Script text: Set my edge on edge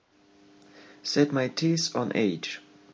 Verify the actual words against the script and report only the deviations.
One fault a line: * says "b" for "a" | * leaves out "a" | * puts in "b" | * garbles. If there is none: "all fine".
* says "teeth" for "edge"